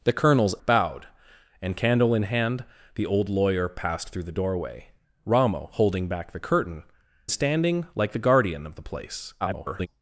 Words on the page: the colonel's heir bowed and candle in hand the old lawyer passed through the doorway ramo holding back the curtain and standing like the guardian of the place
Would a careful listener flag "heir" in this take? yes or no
yes